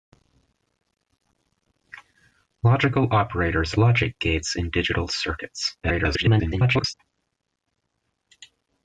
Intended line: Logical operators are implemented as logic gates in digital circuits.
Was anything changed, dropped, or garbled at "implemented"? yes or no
yes